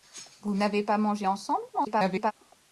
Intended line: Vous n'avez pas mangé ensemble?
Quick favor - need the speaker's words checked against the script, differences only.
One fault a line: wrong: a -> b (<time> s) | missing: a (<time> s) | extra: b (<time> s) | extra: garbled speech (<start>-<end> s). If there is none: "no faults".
extra: garbled speech (1.7-2.3 s)